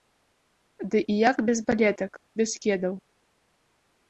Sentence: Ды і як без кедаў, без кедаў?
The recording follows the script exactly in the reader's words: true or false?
false